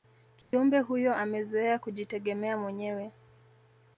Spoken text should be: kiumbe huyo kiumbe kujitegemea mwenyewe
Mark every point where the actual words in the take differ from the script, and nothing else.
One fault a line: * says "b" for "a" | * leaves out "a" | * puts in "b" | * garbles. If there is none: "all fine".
* says "amezoea" for "kiumbe"